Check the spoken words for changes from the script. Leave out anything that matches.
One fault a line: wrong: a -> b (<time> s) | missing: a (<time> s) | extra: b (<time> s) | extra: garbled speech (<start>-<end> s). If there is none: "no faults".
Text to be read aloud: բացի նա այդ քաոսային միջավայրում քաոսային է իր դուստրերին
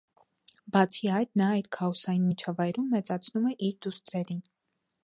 extra: այդ (1.2 s)
wrong: քաոսային -> մեծացնում (3.0 s)